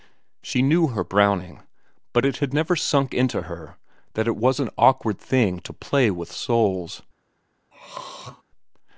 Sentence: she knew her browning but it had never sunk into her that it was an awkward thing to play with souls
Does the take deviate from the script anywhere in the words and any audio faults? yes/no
yes